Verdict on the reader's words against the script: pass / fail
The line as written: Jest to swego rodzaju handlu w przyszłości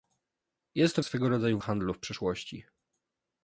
pass